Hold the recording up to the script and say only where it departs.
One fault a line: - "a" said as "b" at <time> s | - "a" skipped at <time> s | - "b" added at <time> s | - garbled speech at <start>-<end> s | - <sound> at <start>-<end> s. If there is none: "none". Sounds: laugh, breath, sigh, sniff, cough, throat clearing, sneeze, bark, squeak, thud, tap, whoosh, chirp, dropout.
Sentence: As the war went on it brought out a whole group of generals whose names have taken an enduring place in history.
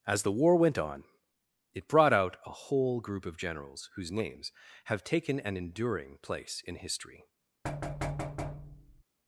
- thud at 7.6-9.0 s